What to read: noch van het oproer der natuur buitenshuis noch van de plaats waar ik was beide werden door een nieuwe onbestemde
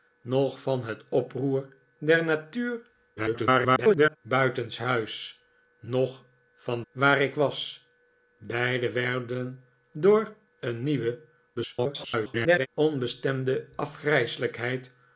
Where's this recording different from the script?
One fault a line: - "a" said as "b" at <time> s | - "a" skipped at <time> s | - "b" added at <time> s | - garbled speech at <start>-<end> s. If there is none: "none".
- garbled speech at 3.2-4.2 s
- "de plaats" skipped at 6.8 s
- garbled speech at 11.6-12.7 s